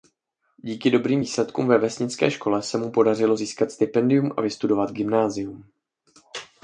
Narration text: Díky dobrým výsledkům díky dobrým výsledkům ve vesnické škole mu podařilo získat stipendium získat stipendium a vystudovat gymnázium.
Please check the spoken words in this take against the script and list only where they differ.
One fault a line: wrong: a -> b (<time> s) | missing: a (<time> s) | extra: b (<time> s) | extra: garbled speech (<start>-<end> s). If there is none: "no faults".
missing: díky dobrým výsledkům (1.7 s)
extra: se (2.6 s)
missing: získat stipendium (4.3 s)